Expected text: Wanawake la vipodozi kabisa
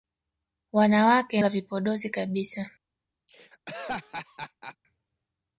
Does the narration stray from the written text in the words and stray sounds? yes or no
yes